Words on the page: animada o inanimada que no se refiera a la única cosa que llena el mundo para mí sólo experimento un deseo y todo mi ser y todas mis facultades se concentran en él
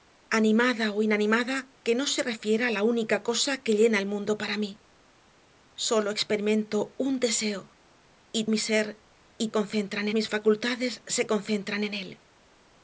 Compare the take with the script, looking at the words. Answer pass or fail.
fail